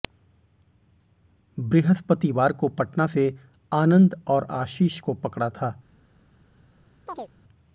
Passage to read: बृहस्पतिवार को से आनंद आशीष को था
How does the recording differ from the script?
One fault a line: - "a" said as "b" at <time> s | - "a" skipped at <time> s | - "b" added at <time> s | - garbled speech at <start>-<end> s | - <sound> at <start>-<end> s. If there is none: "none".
- "पटना" added at 2.8 s
- "और" added at 4.3 s
- "पकड़ा" added at 5.1 s
- chirp at 7.1-7.3 s